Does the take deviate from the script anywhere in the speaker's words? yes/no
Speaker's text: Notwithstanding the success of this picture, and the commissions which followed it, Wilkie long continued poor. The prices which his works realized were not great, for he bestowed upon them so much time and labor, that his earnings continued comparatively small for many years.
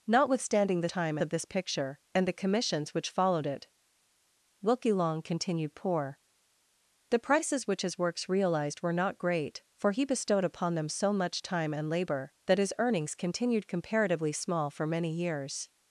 yes